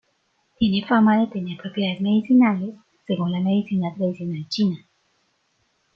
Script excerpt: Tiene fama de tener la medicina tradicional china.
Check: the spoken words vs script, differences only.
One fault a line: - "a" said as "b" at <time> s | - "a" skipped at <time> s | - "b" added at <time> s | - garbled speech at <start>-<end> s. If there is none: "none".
- "propiedades medicinales según" added at 1.6 s